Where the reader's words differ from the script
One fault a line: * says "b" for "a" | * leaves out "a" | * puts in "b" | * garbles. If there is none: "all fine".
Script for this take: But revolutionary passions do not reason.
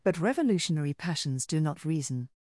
all fine